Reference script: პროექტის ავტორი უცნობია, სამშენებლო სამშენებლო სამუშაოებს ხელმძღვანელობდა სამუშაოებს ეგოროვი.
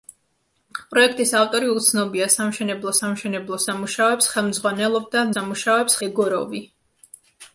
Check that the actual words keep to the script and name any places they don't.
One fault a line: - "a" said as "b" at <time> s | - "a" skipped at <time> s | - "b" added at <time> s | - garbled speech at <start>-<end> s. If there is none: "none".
none